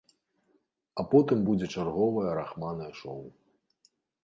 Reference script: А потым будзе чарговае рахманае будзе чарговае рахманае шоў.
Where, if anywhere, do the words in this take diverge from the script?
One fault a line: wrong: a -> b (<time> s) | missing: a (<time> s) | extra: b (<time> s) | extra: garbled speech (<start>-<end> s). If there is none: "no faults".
missing: будзе чарговае рахманае (2.9 s)